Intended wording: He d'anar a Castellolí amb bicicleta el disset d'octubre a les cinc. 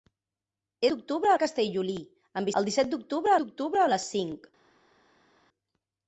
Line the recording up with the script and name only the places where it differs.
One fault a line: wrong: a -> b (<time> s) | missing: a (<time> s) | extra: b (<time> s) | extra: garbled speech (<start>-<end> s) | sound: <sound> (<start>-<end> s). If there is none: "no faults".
wrong: d'anar -> d'octubre (0.9 s)
missing: bicicleta (2.5 s)
extra: d'octubre (3.4 s)